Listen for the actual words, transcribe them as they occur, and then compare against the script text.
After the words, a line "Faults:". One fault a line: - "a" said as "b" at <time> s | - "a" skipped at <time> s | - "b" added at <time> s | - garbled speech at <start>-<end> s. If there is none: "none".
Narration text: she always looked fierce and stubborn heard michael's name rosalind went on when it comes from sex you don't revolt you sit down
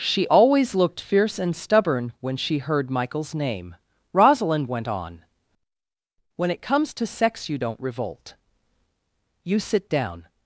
she always looked fierce and stubborn when she heard michael's name rosalind went on when it comes to sex you don't revolt you sit down
Faults:
- "when she" added at 2.2 s
- "from" said as "to" at 6.9 s